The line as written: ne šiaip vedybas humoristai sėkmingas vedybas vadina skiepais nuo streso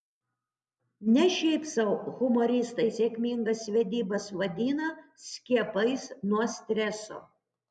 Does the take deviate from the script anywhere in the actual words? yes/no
yes